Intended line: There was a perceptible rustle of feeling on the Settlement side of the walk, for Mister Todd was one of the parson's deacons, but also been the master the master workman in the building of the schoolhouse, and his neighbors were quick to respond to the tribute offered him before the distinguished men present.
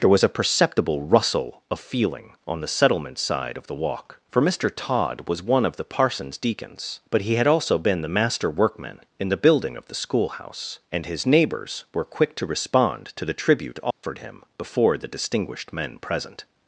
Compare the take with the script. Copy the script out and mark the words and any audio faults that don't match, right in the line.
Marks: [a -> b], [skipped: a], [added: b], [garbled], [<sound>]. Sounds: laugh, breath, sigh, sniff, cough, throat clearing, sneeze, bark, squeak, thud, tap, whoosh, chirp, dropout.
There was a perceptible rustle of feeling on the Settlement side of the walk, for Mister Todd was one of the parson's deacons, but [added: he had] also been the master [skipped: the master] workman in the building of the schoolhouse, and his neighbors were quick to respond to the tribute offered [dropout] him before the distinguished men present.